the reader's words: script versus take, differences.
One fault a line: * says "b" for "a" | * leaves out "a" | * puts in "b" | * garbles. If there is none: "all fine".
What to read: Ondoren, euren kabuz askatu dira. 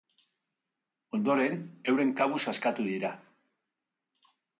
all fine